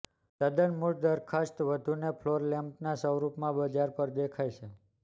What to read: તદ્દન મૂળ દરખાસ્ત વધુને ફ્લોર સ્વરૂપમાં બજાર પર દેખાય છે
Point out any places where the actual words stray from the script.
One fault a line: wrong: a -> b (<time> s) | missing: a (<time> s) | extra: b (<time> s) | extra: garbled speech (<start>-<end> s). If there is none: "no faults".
extra: લેમ્પના (2.5 s)